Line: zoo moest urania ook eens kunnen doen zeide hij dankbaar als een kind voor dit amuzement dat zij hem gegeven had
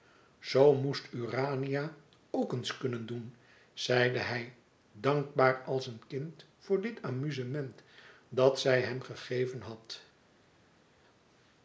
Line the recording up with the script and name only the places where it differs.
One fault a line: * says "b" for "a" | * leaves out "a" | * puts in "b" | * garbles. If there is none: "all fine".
all fine